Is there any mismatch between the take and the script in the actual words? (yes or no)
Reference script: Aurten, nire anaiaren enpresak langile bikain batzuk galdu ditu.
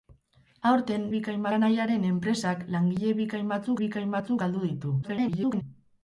yes